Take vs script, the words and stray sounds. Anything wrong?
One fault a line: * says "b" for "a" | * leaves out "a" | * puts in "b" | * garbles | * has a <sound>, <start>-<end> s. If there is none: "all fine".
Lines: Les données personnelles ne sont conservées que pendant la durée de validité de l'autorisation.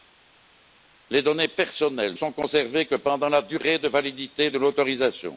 * leaves out "ne"